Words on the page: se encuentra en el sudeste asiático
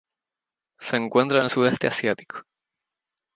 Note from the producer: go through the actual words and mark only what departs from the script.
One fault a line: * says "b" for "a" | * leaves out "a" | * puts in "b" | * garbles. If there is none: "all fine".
all fine